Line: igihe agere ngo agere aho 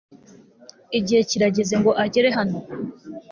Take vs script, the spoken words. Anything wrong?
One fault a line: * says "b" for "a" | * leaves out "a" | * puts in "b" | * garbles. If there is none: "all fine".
* says "kirageze" for "agere"
* says "hano" for "aho"